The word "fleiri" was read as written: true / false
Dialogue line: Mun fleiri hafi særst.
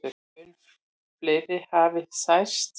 true